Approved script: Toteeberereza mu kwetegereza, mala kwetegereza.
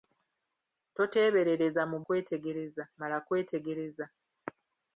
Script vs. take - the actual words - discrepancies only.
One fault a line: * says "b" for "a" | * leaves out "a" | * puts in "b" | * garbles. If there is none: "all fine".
all fine